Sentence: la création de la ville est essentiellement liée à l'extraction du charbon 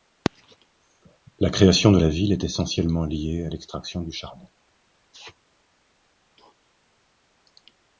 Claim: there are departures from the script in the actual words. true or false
false